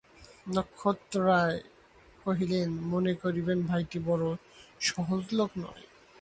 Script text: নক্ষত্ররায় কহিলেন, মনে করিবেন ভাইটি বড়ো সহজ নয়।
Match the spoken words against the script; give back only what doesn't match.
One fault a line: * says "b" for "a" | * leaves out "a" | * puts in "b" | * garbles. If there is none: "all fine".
* puts in "লোক"